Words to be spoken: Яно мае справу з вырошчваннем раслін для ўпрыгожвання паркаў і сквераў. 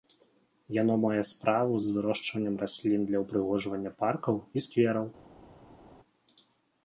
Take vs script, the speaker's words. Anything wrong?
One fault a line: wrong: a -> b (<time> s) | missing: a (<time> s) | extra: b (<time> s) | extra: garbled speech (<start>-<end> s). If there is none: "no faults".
no faults